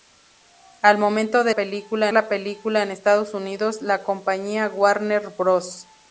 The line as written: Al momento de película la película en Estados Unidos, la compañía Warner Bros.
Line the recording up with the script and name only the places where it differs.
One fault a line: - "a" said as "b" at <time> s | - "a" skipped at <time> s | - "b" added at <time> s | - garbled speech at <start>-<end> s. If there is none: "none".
none